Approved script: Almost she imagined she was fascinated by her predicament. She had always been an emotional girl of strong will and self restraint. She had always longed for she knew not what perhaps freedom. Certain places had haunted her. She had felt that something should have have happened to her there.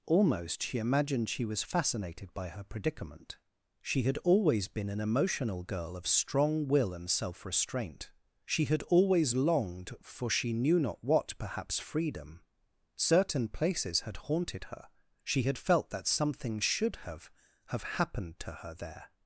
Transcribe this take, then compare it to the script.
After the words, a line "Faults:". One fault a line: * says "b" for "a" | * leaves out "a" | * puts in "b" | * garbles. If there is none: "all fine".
Almost she imagined she was fascinated by her predicament. She had always been an emotional girl of strong will and self restraint. She had always longed for she knew not what perhaps freedom. Certain places had haunted her. She had felt that something should have have happened to her there.
Faults:
all fine